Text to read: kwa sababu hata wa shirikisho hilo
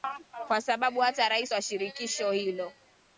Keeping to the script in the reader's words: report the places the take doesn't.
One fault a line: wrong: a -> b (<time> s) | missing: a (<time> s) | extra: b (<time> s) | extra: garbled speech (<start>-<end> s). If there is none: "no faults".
extra: rais (1.3 s)